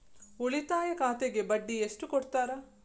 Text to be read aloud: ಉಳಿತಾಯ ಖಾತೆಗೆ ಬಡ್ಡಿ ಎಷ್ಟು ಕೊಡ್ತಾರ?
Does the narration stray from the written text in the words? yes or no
no